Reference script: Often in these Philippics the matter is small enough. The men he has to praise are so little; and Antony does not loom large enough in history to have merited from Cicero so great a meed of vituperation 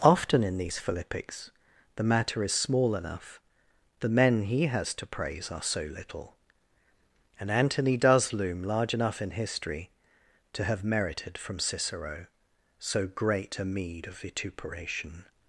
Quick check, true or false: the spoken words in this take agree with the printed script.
false